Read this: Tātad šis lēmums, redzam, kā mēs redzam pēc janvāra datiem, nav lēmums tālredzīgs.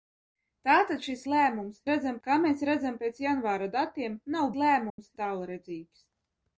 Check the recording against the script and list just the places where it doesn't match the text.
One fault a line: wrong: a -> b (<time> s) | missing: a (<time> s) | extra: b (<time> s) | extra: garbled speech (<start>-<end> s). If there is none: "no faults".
no faults